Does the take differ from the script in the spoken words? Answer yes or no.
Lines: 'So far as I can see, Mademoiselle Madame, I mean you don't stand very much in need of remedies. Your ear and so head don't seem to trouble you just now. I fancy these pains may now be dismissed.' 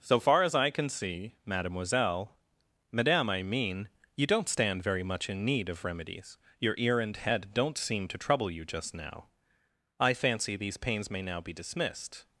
yes